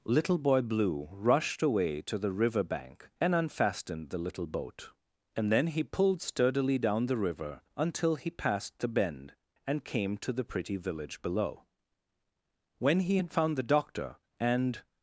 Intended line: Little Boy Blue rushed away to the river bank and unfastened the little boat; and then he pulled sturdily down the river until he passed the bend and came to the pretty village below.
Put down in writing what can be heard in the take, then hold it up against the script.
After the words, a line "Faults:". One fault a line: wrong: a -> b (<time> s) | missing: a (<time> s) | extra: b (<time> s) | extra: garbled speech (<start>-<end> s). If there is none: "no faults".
Little Boy Blue rushed away to the river bank and unfastened the little boat; and then he pulled sturdily down the river until he passed the bend and came to the pretty village below. When he had found the doctor and
Faults:
extra: When he had found the doctor and (12.8 s)